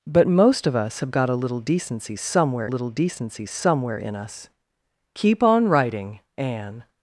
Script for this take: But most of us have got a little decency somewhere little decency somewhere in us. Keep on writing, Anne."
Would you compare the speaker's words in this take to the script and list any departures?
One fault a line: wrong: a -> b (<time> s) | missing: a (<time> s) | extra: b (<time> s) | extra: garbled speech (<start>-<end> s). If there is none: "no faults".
no faults